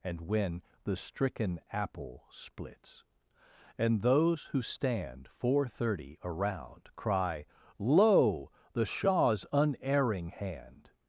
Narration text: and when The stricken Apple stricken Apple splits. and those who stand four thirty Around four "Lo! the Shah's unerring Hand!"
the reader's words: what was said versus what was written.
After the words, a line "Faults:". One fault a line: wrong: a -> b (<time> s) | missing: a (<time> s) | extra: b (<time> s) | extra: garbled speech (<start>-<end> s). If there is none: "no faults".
and when The stricken Apple splits. and those who stand four thirty Around cry "Lo! the Shah's unerring Hand!"
Faults:
missing: stricken Apple (2.2 s)
wrong: four -> cry (7.0 s)